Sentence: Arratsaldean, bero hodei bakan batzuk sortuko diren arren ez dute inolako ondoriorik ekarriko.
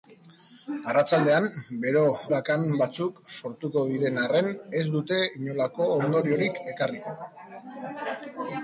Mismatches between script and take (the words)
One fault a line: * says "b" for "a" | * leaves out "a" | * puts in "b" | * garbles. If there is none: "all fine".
* leaves out "hodei"